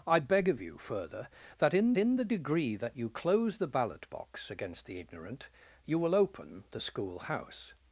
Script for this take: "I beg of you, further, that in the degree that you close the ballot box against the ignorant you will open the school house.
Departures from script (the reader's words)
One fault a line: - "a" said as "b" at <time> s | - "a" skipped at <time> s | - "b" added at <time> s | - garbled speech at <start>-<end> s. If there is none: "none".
- "in" added at 2.0 s